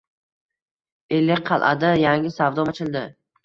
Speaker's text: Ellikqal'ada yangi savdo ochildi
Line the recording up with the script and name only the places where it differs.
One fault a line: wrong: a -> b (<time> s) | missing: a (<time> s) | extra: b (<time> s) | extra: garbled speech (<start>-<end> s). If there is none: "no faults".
no faults